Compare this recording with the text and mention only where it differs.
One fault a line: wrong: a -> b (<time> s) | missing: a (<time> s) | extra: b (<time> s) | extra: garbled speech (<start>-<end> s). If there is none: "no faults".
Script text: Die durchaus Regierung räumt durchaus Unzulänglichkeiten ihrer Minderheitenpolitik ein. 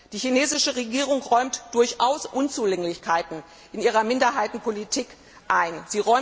wrong: durchaus -> chinesische (0.2 s)
extra: in (3.7 s)